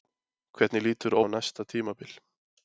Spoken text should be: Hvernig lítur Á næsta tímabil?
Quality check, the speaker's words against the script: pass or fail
pass